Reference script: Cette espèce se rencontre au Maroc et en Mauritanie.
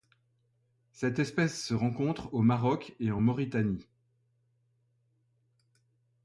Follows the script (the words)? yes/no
yes